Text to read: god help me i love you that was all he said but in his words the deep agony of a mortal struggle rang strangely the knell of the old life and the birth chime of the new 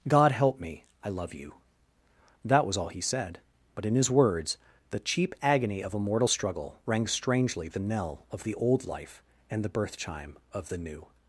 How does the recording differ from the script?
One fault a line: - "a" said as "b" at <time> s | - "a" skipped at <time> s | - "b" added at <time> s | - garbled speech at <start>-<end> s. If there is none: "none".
- "deep" said as "cheap" at 5.0 s